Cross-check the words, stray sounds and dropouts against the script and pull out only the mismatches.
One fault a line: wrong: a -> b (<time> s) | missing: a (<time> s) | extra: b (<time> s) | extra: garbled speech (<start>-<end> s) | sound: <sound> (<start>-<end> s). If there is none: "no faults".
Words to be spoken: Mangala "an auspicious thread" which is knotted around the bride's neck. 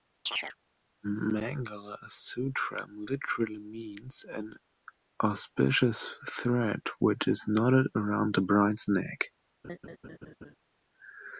sound: chirp (0.3-0.6 s)
extra: sutram literally means (2.1 s)
sound: laugh (9.6-10.5 s)